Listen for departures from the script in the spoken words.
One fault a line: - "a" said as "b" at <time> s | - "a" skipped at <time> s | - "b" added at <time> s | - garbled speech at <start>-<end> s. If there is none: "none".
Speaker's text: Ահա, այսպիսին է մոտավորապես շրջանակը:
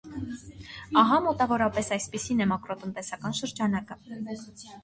- "մոտավորապես" added at 1.2 s
- "մոտավորապես" said as "մակրոտնտեսական" at 2.6 s